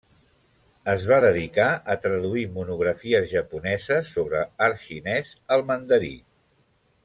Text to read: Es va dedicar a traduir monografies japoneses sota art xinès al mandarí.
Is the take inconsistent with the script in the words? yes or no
yes